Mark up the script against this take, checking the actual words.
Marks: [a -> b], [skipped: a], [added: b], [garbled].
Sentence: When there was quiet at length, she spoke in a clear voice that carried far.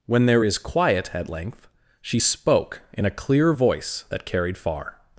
When there [was -> is] quiet at length, she spoke in a clear voice that carried far.